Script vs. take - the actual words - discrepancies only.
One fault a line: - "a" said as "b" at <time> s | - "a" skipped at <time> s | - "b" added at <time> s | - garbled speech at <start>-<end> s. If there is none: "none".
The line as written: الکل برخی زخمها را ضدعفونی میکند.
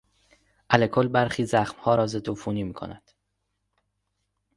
none